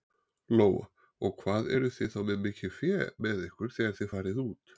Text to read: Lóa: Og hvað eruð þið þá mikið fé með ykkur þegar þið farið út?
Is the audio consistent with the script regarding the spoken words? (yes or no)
no